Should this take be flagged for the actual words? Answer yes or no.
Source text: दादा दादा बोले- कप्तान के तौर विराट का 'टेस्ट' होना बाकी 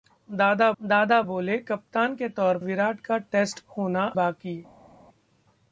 no